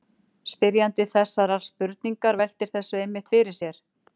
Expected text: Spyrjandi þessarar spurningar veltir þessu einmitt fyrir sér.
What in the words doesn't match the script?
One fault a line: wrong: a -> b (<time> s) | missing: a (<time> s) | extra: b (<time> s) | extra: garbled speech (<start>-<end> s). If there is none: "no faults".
no faults